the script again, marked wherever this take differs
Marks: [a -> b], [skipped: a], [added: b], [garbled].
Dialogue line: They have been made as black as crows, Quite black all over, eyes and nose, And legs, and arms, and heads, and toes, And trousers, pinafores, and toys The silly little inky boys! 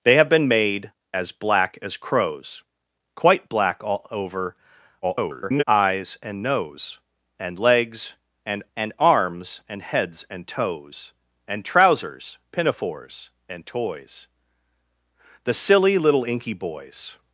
They have been made as black as crows, Quite black all over, [garbled] eyes and nose, And legs, and [added: and] arms, and heads, and toes, And trousers, pinafores, and toys The silly little inky boys!